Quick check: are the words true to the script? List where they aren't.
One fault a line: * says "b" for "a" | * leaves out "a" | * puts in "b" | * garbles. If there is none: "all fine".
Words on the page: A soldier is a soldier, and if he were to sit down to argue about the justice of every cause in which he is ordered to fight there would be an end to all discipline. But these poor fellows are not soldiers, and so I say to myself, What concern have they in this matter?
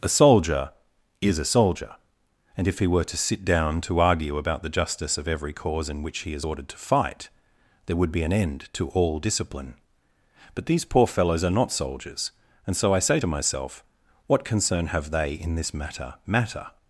* puts in "matter"